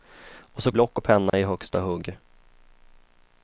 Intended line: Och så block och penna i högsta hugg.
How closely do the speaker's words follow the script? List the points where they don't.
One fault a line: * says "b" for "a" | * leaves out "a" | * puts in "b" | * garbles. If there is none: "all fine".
all fine